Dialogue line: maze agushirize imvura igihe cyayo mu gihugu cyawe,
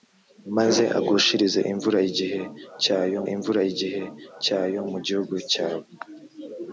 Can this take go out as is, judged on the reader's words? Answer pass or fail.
fail